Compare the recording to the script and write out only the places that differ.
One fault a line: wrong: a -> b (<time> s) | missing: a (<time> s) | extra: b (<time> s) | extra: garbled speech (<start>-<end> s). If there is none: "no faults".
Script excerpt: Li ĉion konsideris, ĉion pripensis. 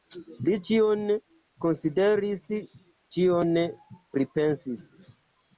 no faults